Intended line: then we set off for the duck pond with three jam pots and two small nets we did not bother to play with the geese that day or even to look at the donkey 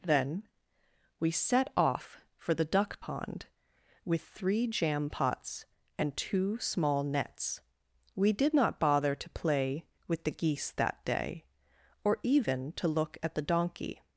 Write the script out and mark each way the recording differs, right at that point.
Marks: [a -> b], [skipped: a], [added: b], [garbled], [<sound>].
then we set off for the duck pond with three jam pots and two small nets we did not bother to play with the geese that day or even to look at the donkey